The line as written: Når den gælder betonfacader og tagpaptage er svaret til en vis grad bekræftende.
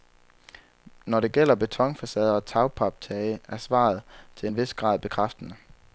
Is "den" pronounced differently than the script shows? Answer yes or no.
yes